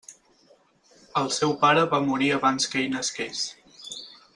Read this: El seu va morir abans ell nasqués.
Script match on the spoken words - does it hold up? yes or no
no